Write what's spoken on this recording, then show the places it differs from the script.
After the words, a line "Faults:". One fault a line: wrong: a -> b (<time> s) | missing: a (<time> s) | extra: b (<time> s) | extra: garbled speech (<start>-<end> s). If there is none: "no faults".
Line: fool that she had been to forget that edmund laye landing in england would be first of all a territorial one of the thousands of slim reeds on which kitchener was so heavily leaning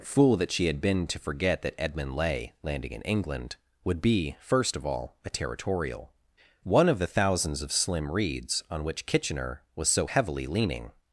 fool that she had been to forget that edmund laye landing in england would be first of all a territorial one of the thousands of slim reeds on which kitchener was so heavily leaning
Faults:
no faults